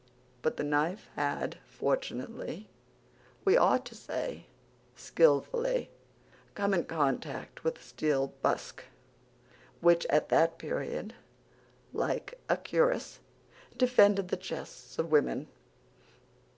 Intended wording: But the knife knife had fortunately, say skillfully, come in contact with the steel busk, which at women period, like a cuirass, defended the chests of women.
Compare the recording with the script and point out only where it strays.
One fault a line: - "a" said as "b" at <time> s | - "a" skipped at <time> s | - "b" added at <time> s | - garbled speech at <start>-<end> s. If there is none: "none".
- "knife" skipped at 1.1 s
- "we ought to" added at 3.4 s
- "women" said as "that" at 10.3 s